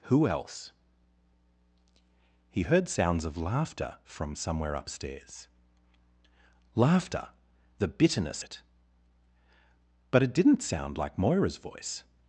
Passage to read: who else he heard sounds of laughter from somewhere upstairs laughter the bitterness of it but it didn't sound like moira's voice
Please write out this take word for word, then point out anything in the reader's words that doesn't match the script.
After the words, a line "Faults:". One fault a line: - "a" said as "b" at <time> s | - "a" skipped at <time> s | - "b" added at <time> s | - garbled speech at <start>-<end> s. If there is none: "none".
who else he heard sounds of laughter from somewhere upstairs laughter the bitterness it but it didn't sound like moira's voice
Faults:
- "of" skipped at 8.4 s